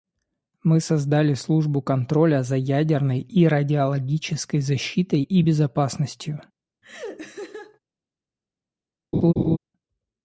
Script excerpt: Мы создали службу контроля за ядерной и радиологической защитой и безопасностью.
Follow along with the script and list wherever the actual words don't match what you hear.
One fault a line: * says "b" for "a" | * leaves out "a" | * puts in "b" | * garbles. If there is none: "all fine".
all fine